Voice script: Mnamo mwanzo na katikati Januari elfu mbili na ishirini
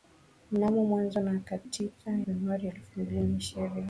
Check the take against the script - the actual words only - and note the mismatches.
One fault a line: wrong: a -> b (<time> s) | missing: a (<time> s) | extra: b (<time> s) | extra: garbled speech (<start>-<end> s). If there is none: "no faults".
no faults